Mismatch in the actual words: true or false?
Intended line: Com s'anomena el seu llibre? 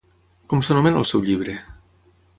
false